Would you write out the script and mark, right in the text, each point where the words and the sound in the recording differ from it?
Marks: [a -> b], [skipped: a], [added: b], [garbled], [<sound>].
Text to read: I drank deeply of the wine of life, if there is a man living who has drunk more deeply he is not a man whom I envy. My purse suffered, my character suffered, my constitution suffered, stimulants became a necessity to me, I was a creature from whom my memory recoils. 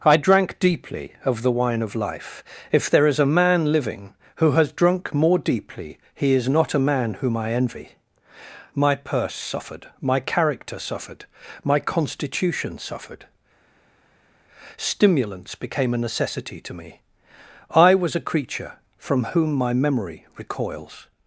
I drank deeply of the wine of life, if there is a man living who has drunk more deeply he is not a man whom I envy. My purse suffered, my character suffered, my constitution suffered, stimulants became a necessity to me, I was a creature from whom my memory recoils.